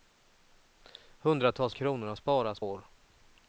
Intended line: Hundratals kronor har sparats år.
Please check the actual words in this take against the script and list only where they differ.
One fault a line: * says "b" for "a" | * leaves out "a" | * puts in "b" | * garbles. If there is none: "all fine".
all fine